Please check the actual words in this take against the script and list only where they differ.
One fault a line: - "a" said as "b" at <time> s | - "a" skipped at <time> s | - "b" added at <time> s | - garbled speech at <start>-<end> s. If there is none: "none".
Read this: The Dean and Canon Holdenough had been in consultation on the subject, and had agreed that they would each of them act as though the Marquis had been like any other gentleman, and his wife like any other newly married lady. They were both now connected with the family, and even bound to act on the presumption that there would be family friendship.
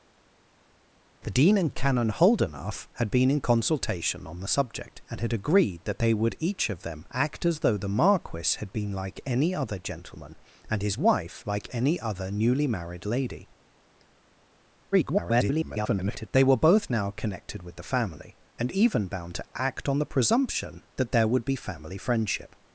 - garbled speech at 14.9-16.3 s